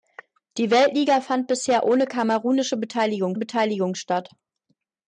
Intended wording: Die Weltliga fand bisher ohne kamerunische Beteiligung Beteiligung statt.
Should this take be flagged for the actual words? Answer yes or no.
no